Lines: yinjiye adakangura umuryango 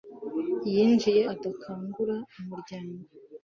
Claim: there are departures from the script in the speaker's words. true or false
false